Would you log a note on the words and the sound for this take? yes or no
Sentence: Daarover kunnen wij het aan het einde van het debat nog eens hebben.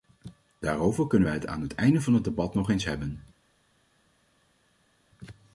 no